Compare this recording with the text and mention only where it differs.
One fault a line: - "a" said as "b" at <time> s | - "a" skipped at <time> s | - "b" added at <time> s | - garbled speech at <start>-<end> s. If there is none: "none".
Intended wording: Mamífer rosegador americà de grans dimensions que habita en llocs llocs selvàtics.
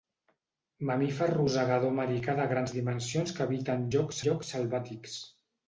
none